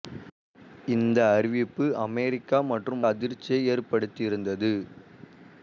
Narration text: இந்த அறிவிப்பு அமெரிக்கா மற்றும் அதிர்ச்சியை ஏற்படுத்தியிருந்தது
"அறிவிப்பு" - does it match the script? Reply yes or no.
yes